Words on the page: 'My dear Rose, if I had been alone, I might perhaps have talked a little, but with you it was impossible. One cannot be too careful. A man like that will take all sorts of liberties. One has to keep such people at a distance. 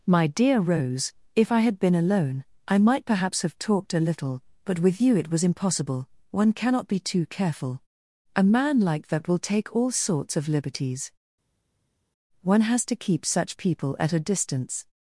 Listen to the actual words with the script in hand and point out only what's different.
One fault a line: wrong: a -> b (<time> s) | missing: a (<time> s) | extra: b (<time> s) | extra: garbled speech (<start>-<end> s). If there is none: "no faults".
no faults